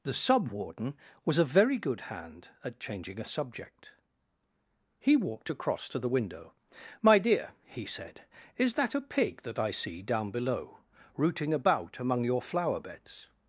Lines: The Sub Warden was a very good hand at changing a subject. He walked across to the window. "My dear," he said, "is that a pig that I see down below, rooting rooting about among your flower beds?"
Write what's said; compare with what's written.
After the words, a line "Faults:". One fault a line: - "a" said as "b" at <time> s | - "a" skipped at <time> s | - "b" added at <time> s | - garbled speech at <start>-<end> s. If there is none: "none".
The Sub Warden was a very good hand at changing a subject. He walked across to the window. "My dear," he said, "is that a pig that I see down below, rooting about among your flower beds?"
Faults:
- "rooting" skipped at 11.5 s